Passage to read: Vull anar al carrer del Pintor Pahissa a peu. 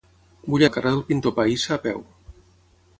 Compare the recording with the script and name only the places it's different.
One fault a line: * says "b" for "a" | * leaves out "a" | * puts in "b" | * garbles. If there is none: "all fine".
* leaves out "anar"